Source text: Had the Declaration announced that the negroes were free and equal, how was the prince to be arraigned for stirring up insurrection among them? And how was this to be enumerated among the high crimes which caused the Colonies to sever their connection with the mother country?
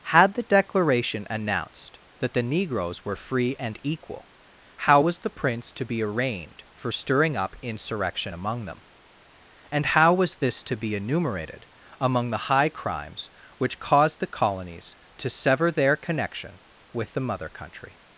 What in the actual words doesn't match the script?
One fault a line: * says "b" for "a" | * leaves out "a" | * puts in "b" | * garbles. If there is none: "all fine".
all fine